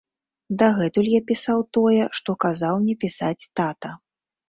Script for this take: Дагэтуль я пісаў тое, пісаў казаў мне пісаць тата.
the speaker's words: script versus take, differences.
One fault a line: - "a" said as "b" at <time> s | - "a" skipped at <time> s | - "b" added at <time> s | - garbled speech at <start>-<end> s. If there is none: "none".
- "пісаў" said as "што" at 2.2 s